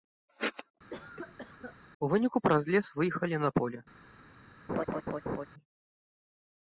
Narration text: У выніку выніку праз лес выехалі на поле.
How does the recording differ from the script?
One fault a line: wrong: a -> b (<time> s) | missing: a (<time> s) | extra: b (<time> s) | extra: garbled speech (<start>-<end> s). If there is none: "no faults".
missing: выніку (2.4 s)